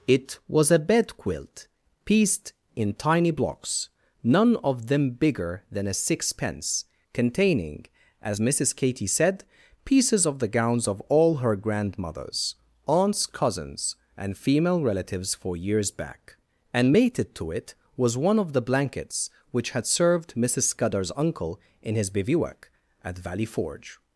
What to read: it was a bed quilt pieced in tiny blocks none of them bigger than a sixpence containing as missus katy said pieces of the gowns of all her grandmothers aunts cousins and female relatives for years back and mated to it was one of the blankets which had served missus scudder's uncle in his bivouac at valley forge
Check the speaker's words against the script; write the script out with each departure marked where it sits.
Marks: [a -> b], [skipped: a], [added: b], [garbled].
it was a bed quilt pieced in tiny blocks none of them bigger than a sixpence containing as missus katy said pieces of the gowns of all her grandmothers aunts cousins and female relatives for years back and mated to it was one of the blankets which had served missus scudder's uncle in his bivouac at valley forge